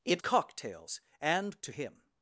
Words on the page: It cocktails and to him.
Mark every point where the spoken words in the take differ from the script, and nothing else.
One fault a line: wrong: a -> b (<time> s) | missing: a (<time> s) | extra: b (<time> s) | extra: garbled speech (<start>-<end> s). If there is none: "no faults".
no faults